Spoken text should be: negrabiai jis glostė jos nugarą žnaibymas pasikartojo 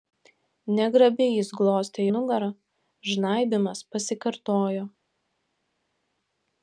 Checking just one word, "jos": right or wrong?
wrong